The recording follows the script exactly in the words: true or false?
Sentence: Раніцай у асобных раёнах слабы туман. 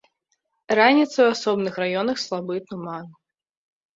true